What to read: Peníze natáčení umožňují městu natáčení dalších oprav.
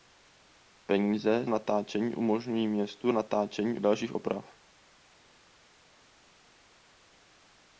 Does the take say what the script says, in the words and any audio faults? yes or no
yes